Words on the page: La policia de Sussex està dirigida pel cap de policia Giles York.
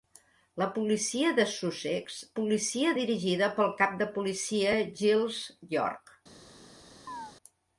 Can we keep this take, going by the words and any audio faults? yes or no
no